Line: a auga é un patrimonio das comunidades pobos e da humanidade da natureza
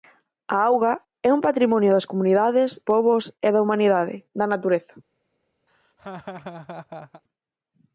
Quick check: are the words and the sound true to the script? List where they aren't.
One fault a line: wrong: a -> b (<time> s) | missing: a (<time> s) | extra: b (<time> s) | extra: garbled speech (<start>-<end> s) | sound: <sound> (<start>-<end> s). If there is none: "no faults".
sound: laugh (5.7-7.2 s)